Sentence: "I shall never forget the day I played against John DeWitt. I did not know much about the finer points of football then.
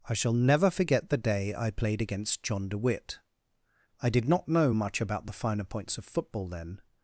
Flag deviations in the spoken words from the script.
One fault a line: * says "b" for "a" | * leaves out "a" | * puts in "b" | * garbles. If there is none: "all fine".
all fine